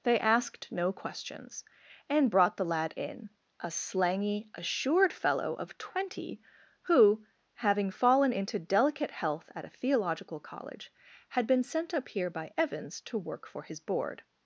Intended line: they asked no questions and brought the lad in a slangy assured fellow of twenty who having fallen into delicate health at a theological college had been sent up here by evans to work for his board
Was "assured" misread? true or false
false